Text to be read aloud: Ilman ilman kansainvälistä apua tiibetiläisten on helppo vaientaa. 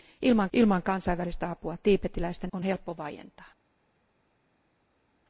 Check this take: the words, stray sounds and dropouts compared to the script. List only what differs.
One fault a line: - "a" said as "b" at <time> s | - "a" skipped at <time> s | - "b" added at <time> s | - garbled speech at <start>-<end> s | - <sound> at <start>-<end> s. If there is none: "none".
none